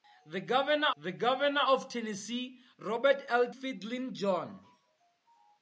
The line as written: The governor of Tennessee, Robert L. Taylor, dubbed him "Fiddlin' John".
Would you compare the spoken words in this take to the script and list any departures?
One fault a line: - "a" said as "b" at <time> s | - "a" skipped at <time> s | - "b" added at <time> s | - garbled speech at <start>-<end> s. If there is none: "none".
- "the governor" added at 1.0 s
- "Taylor dubbed him" skipped at 3.5 s